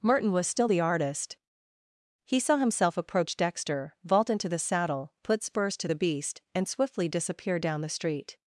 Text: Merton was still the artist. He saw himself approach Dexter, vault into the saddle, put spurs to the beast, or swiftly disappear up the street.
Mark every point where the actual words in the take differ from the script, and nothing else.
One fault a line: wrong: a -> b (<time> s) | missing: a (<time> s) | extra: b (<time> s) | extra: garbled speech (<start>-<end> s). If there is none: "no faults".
wrong: or -> and (6.5 s)
wrong: up -> down (7.6 s)